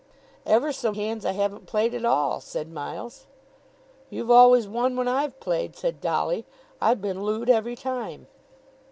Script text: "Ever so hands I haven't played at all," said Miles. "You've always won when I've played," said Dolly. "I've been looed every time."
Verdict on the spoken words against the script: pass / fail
pass